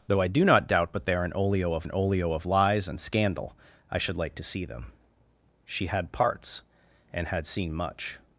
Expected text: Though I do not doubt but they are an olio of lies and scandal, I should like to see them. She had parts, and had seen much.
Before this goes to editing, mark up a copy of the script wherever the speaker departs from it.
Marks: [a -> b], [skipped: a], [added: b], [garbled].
Though I do not doubt but they are an olio of [added: an olio of] lies and scandal, I should like to see them. She had parts, and had seen much.